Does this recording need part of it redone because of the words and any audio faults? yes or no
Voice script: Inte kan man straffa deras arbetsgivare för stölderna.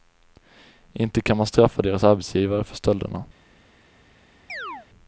yes